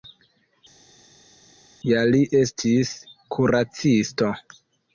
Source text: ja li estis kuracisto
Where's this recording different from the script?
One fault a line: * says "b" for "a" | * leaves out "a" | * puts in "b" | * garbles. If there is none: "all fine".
all fine